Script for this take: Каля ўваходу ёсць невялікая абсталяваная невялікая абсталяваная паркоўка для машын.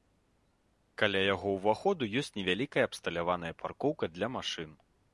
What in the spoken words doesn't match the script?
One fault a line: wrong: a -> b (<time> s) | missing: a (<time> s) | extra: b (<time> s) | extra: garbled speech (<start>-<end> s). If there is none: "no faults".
extra: яго (1.3 s)
missing: невялікая абсталяваная (3.5 s)